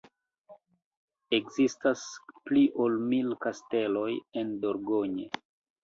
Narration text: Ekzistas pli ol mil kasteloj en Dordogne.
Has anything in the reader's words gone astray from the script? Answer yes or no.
no